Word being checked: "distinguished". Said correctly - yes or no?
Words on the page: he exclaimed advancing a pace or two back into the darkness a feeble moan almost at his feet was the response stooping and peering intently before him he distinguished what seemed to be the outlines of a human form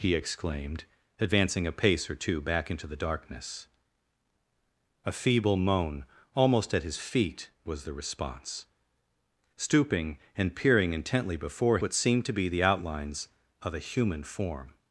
no